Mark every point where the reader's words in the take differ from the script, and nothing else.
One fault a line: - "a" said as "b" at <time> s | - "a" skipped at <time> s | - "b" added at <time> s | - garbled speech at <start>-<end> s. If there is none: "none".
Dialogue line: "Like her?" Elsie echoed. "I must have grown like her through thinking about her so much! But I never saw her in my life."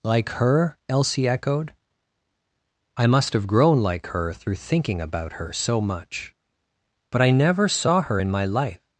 none